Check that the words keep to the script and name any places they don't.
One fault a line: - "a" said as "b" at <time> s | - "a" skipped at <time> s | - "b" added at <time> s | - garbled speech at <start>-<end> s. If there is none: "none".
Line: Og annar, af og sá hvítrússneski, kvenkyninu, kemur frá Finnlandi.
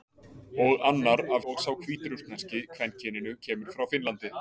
none